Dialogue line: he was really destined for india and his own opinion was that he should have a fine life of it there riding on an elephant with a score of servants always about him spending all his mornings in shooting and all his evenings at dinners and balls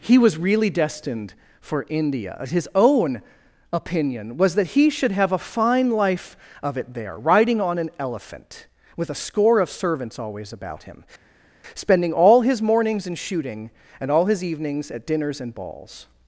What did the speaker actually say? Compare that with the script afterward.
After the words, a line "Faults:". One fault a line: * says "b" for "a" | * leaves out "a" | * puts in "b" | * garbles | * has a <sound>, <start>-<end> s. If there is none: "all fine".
he was really destined for india his own opinion was that he should have a fine life of it there riding on an elephant with a score of servants always about him spending all his mornings in shooting and all his evenings at dinners and balls
Faults:
* leaves out "and"